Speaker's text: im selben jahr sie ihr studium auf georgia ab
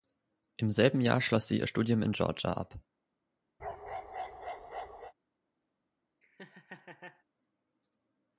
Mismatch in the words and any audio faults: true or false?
true